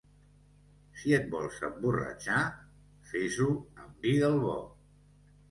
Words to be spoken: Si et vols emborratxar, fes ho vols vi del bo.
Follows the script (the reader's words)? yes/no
no